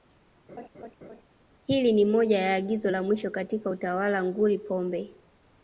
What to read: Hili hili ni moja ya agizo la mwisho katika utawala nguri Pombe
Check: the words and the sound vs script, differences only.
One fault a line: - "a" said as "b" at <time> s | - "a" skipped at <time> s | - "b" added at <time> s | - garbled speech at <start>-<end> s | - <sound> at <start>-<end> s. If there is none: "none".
- laugh at 0.5-1.2 s
- "hili" skipped at 1.9 s